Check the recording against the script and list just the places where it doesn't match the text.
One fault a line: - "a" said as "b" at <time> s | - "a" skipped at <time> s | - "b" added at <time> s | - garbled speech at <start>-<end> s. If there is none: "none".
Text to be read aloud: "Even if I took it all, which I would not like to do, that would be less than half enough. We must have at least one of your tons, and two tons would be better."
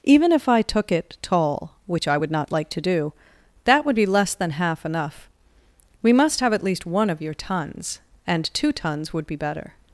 - "all" said as "tall" at 1.2 s